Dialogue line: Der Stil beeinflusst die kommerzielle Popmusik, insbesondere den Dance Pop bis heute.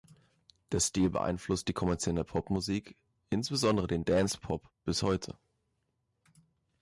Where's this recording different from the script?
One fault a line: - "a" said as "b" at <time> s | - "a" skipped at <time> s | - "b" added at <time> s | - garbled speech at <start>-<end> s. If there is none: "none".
none